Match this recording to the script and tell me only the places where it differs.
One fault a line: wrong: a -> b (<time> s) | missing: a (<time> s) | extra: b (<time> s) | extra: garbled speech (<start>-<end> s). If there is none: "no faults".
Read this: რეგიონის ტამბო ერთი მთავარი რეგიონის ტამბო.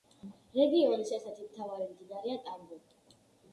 wrong: ტამბო -> ერთ (1.2 s)
wrong: რეგიონის -> მდინარეა (1.9 s)